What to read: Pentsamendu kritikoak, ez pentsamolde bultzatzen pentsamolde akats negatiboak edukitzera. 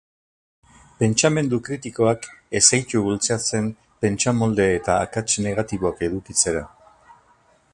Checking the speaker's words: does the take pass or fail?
fail